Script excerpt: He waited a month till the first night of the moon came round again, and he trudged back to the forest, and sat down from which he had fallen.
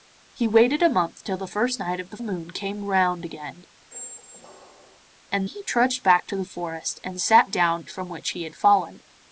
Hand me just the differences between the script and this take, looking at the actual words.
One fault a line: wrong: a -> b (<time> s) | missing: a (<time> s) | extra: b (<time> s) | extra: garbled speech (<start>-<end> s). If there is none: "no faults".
no faults